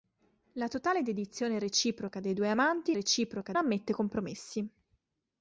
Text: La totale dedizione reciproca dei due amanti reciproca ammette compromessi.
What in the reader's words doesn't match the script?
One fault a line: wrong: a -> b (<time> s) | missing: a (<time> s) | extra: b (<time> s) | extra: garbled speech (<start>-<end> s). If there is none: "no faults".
no faults